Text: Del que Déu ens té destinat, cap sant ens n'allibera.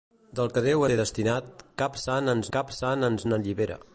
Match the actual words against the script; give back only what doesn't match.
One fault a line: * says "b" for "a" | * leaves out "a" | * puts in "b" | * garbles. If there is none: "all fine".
* leaves out "ens"
* puts in "cap sant ens"